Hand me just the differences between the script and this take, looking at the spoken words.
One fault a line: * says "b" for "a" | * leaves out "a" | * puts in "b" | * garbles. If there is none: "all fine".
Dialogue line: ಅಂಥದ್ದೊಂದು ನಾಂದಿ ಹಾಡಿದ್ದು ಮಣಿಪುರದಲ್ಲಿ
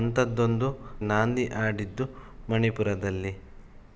all fine